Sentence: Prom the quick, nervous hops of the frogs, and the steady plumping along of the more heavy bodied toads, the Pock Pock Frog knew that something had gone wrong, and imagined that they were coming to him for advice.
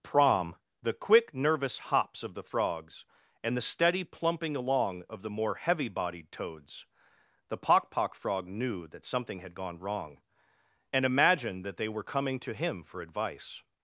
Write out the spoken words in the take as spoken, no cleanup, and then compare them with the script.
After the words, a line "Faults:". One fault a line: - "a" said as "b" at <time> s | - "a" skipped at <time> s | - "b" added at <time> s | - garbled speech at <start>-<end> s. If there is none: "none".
Prom the quick, nervous hops of the frogs, and the steady plumping along of the more heavy bodied toads, the Pock Pock Frog knew that something had gone wrong, and imagined that they were coming to him for advice.
Faults:
none